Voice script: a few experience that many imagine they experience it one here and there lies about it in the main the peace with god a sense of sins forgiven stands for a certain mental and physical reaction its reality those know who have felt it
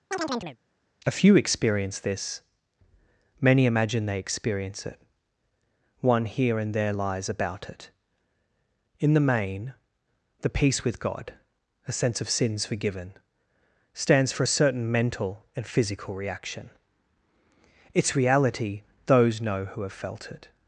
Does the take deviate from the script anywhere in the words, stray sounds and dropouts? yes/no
yes